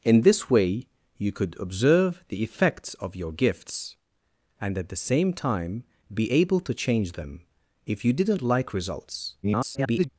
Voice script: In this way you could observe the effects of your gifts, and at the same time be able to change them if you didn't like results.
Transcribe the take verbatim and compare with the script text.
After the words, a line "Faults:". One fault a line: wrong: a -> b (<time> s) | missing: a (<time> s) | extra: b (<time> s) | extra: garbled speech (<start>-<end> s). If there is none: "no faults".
In this way you could observe the effects of your gifts, and at the same time be able to change them if you didn't like results. [garbled]
Faults:
extra: garbled speech (9.4-10.1 s)